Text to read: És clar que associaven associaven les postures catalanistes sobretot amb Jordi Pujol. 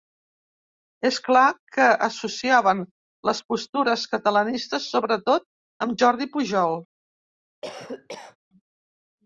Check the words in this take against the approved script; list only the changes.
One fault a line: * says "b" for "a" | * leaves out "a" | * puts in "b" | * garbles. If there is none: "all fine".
* leaves out "associaven"